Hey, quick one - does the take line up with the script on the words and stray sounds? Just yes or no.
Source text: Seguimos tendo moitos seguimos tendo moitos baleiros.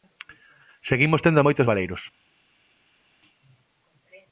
no